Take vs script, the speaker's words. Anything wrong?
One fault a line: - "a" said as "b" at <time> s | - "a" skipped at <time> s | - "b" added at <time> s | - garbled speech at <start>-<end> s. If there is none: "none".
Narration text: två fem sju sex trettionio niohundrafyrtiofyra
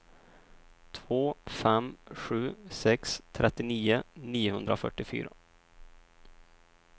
none